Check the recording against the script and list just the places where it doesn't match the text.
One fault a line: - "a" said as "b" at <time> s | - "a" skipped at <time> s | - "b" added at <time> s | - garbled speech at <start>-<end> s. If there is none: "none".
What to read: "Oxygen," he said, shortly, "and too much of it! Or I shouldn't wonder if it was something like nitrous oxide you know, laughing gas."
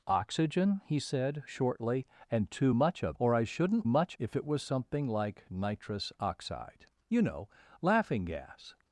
- "it" skipped at 3.2 s
- "wonder" said as "much" at 3.8 s